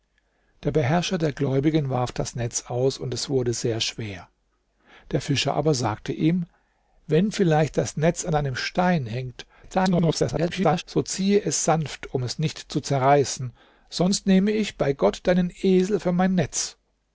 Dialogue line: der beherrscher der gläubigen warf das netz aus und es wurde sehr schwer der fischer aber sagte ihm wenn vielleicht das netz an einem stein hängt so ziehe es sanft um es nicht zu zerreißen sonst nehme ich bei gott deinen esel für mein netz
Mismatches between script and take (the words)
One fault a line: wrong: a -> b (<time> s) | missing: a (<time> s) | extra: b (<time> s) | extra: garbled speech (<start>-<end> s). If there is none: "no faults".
extra: garbled speech (9.6-10.8 s)